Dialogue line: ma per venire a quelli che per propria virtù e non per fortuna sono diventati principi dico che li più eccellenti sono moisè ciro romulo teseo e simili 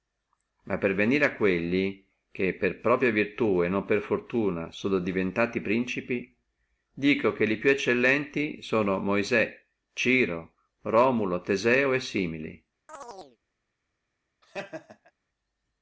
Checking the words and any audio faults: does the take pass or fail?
fail